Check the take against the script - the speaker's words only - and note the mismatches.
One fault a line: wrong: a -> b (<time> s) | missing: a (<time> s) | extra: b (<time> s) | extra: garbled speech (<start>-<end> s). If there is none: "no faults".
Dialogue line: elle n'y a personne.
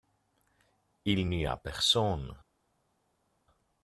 wrong: elle -> il (1.1 s)